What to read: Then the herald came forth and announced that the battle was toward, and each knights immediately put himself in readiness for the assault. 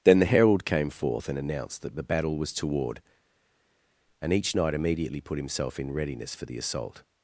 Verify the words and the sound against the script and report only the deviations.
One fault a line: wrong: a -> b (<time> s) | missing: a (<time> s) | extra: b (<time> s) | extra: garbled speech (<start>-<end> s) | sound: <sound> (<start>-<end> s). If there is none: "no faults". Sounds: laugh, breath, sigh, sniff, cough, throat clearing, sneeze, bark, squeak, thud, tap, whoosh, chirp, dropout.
wrong: knights -> knight (4.5 s)